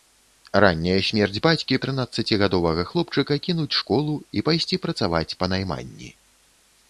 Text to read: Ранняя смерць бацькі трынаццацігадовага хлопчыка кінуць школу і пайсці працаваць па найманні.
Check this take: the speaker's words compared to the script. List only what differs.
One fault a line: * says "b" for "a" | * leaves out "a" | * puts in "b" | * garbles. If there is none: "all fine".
all fine